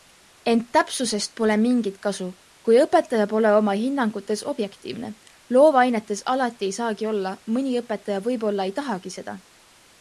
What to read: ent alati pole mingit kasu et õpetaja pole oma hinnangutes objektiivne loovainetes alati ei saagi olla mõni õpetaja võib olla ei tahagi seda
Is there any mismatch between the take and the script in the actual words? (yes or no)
yes